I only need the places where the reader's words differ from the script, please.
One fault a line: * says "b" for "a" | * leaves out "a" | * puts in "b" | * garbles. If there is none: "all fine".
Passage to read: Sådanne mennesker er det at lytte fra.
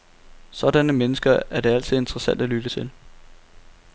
* puts in "altid interessant"
* says "til" for "fra"